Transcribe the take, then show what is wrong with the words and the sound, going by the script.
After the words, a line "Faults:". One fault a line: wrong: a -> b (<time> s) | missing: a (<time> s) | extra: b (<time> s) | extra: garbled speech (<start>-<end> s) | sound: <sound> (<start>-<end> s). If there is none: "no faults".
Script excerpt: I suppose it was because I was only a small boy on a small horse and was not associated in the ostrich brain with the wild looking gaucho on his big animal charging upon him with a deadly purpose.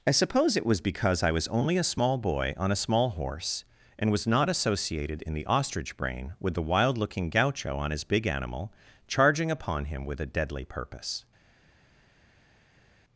I suppose it was because I was only a small boy on a small horse and was not associated in the ostrich brain with the wild looking gaucho on his big animal charging upon him with a deadly purpose.
Faults:
no faults